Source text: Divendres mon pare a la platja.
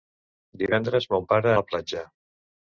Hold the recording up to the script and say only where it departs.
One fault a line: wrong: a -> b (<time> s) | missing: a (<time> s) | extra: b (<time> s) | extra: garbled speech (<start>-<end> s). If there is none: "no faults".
no faults